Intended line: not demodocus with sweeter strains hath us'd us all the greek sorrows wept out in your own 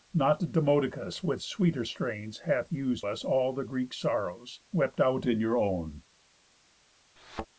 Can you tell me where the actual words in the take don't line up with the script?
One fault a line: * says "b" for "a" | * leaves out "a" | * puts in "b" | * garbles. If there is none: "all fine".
all fine